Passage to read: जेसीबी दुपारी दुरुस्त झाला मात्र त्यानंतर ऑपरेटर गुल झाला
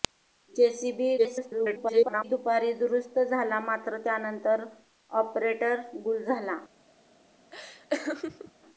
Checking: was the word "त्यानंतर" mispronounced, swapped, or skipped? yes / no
no